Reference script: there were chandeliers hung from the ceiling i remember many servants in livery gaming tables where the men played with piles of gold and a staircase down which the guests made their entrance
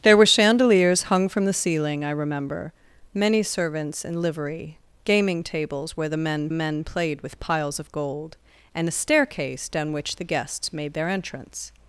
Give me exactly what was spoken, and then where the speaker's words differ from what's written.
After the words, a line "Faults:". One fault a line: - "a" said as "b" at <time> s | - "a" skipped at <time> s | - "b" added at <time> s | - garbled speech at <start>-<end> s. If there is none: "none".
there were chandeliers hung from the ceiling i remember many servants in livery gaming tables where the men men played with piles of gold and a staircase down which the guests made their entrance
Faults:
- "men" added at 6.5 s